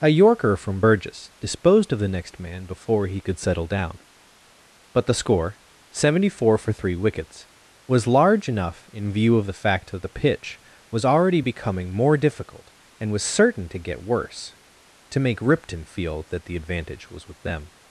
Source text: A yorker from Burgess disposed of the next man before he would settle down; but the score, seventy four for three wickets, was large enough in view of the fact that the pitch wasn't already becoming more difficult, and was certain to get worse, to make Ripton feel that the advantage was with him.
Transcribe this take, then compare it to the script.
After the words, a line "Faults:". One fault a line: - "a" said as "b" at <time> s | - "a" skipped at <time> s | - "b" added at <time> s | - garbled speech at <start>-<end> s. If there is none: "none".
A yorker from Burgess disposed of the next man before he could settle down; but the score, seventy four for three wickets, was large enough in view of the fact that the pitch was already becoming more difficult, and was certain to get worse, to make Ripton feel that the advantage was with them.
Faults:
- "would" said as "could" at 3.2 s
- "wasn't" said as "was" at 10.9 s
- "him" said as "them" at 17.4 s